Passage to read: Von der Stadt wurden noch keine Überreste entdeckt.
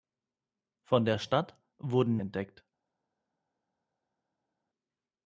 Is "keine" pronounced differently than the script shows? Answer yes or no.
yes